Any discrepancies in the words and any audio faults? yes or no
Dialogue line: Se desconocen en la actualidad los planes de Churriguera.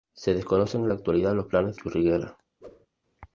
yes